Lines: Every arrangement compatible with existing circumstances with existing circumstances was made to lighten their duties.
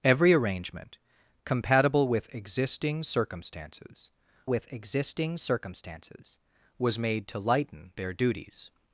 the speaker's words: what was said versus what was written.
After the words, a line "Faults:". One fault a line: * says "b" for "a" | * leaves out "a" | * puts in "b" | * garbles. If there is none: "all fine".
Every arrangement compatible with existing circumstances with existing circumstances was made to lighten their duties.
Faults:
all fine